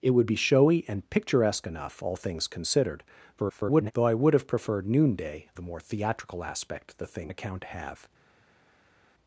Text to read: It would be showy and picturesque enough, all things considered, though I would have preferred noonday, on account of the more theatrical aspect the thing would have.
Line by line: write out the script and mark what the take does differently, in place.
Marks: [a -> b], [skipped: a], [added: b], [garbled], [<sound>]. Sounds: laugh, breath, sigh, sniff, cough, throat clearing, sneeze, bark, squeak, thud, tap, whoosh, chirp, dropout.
It would be showy and picturesque enough, all things considered, [garbled] though I would have preferred noonday, [skipped: on account of] the more theatrical aspect the thing [would -> account] have.